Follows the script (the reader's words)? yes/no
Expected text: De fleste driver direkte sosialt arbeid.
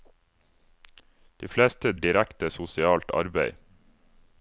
no